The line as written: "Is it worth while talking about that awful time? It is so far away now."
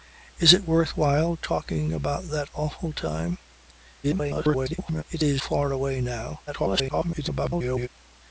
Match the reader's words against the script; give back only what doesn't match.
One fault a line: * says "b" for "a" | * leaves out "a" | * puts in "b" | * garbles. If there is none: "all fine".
* garbles
* leaves out "so"
* garbles